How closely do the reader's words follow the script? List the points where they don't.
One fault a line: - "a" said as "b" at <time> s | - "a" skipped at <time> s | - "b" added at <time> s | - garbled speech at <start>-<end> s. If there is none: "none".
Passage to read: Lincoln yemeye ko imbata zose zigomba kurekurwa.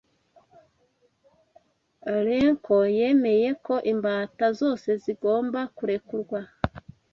none